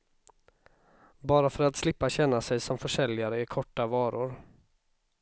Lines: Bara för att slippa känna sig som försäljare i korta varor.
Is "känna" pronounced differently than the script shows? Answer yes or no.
no